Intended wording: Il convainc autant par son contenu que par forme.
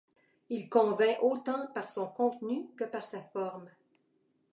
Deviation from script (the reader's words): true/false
true